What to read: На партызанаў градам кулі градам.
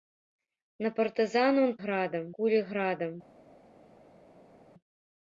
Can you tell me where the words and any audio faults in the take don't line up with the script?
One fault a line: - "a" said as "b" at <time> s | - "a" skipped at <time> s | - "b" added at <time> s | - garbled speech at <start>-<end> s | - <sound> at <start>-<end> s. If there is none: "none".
none